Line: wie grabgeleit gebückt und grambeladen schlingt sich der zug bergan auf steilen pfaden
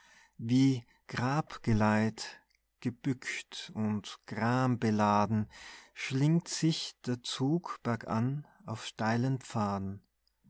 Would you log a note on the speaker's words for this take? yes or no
no